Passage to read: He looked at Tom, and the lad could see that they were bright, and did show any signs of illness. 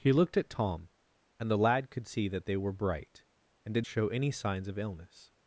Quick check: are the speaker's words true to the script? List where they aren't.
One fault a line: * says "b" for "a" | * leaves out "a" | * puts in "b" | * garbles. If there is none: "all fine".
all fine